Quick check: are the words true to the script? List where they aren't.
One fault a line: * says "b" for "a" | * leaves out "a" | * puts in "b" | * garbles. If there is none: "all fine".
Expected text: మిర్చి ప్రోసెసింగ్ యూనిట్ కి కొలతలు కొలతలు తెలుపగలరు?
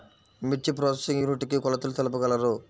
* leaves out "కొలతలు"